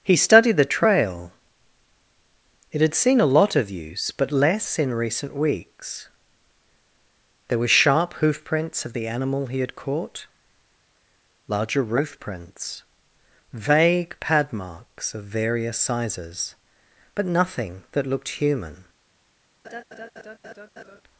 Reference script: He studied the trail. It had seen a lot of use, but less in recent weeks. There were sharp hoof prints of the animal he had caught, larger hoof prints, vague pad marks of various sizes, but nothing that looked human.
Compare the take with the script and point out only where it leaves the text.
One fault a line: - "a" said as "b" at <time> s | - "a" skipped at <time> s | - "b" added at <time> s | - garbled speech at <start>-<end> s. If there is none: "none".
- "hoof" said as "roof" at 11.8 s